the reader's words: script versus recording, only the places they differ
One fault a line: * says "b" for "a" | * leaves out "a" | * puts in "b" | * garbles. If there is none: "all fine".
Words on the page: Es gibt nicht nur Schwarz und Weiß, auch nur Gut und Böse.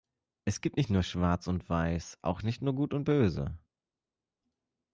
* puts in "nicht"